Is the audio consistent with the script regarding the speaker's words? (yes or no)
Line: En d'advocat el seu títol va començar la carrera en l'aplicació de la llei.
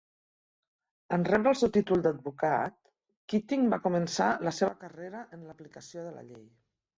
no